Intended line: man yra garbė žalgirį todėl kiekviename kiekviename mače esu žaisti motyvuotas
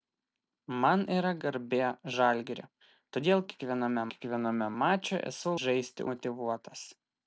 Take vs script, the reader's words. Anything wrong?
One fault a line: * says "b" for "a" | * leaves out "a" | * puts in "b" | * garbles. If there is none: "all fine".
all fine